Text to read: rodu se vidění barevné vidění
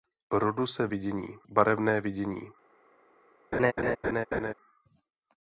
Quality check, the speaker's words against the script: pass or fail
pass